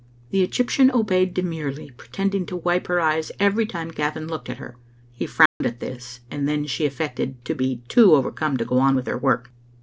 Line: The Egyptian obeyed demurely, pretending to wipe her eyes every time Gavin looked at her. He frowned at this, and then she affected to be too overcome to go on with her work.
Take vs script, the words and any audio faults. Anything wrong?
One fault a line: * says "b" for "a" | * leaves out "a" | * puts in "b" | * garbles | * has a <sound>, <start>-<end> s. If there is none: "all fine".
* has a dropout, 5.5-5.6 s